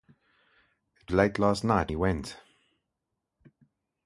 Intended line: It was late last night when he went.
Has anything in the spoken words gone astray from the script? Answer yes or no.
yes